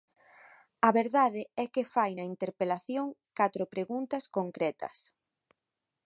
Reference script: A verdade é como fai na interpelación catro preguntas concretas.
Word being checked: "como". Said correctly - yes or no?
no